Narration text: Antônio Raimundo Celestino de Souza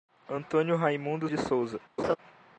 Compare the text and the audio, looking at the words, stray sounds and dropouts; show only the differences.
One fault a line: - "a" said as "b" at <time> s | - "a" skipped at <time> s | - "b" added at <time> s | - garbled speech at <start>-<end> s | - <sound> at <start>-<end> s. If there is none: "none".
- "Celestino" skipped at 1.3 s
- laugh at 2.0-2.2 s